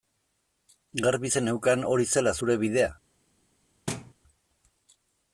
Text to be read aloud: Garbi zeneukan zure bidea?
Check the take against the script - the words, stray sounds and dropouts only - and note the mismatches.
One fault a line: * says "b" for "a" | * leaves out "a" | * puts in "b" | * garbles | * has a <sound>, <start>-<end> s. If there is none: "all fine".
* puts in "hori zela"
* has a thud, 3.9-4.1 s